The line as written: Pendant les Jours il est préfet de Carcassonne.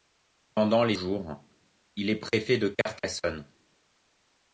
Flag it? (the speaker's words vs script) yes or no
no